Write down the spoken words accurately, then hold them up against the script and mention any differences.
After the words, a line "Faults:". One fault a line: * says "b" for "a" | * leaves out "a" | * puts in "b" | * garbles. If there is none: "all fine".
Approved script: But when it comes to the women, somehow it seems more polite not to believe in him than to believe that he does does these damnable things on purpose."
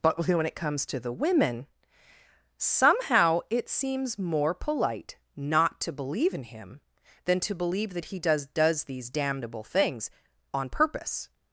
But when it comes to the women, somehow it seems more polite not to believe in him than to believe that he does does these damnable things on purpose."
Faults:
all fine